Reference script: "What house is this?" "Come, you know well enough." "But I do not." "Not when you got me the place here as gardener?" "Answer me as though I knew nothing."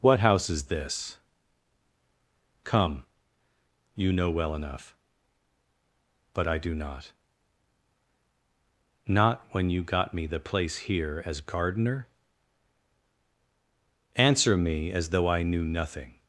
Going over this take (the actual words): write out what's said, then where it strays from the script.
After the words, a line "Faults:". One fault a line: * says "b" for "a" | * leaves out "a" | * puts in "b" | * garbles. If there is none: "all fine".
"What house is this?" "Come, you know well enough." "But I do not." "Not when you got me the place here as gardener?" "Answer me as though I knew nothing."
Faults:
all fine